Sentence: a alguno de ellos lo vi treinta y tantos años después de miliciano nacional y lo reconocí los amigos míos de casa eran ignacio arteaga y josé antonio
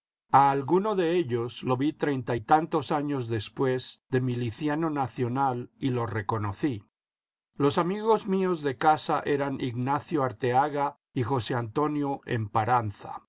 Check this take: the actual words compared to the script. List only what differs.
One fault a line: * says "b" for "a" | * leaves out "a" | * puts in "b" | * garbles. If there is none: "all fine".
all fine